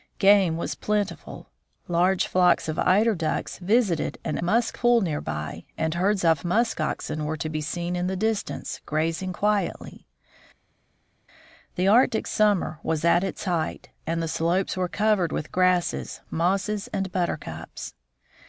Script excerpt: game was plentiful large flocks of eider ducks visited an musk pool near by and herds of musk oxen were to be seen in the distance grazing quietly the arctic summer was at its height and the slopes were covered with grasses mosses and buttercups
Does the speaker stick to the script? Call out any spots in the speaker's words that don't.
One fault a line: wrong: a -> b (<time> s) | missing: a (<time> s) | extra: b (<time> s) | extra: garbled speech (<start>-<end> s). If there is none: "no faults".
no faults